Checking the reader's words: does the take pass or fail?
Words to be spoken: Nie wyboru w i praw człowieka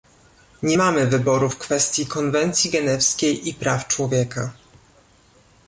fail